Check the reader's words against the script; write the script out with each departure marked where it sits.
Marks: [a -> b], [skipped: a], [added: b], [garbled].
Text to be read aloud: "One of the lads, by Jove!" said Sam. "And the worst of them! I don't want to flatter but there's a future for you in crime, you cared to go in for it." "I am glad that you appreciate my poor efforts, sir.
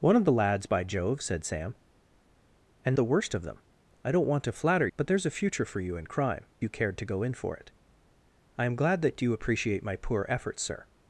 "One of the lads, by Jove!" said Sam. "And the worst of them! I don't want to flatter but there's a future for you in crime, you cared to go in for it." "I am glad that you appreciate my poor efforts, sir.